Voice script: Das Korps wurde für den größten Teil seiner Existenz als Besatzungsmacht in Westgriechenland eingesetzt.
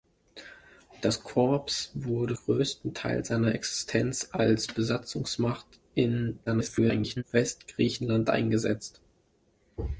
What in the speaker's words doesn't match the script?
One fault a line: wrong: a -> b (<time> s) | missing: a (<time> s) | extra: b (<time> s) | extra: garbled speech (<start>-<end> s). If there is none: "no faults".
missing: für den (2.4 s)
extra: garbled speech (6.5-7.2 s)